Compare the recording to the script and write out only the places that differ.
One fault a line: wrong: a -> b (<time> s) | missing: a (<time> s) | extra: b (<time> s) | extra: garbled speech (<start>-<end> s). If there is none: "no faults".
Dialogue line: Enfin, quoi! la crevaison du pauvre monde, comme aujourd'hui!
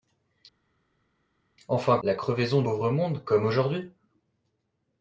missing: quoi (2.0 s)
missing: du (2.6 s)